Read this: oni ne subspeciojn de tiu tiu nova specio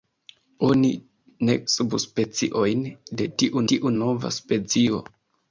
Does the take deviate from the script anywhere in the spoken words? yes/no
no